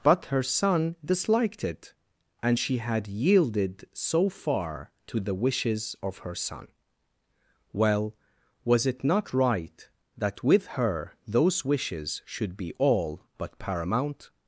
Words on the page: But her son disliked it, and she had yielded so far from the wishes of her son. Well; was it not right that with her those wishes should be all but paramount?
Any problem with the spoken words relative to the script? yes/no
yes